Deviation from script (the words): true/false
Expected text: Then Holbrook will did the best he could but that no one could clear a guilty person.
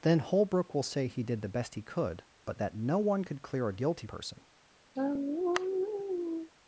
true